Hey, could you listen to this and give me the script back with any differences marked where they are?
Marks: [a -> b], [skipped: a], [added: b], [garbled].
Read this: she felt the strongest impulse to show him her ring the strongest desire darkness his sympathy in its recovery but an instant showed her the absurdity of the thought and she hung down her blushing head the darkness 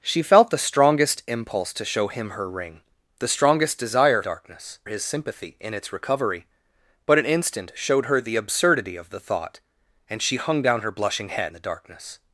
she felt the strongest impulse to show him her ring the strongest desire darkness his sympathy in its recovery but an instant showed her the absurdity of the thought and she hung down her blushing head the darkness